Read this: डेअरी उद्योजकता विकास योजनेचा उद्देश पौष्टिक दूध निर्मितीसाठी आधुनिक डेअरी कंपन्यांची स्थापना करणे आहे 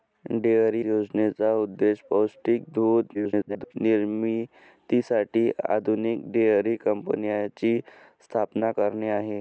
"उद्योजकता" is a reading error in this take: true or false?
true